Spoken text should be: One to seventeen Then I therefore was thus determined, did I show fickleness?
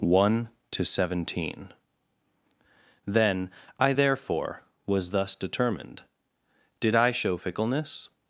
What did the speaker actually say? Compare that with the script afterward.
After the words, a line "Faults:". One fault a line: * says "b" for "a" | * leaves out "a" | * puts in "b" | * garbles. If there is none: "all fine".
One to seventeen Then I therefore was thus determined, did I show fickleness?
Faults:
all fine